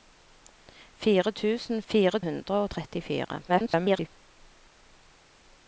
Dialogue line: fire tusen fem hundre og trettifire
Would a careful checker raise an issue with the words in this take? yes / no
yes